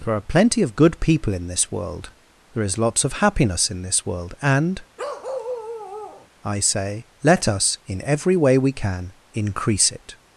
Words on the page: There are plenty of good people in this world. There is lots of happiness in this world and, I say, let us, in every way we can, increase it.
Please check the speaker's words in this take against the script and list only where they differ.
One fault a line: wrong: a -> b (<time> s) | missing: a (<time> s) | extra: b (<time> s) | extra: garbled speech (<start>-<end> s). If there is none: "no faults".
no faults